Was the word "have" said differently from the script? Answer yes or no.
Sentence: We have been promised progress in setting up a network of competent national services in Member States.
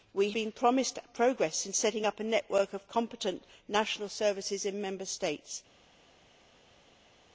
yes